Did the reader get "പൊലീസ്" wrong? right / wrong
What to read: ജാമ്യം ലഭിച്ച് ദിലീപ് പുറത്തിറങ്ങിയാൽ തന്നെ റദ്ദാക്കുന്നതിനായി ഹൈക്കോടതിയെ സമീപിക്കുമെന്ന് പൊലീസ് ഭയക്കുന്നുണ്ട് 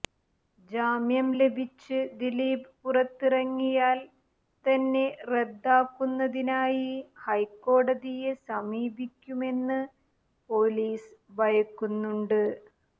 right